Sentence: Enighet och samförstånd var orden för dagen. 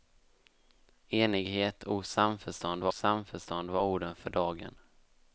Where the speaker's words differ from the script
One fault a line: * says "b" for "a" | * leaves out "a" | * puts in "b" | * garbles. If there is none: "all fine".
* puts in "samförstånd var"